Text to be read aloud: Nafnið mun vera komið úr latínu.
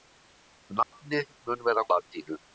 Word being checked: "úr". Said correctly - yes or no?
no